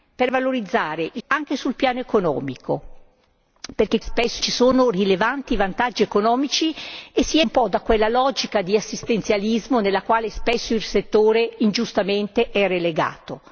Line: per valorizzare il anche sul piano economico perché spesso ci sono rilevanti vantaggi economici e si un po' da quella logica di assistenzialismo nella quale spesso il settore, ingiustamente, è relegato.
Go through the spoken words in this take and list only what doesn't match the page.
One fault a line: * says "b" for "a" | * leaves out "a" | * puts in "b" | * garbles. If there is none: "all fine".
all fine